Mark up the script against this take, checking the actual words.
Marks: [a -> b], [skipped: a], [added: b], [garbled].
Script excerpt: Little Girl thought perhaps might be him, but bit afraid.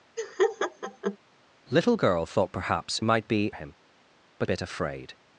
Little Girl thought perhaps might be him, but bit afraid.